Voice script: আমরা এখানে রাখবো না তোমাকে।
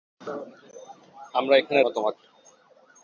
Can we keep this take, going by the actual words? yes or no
no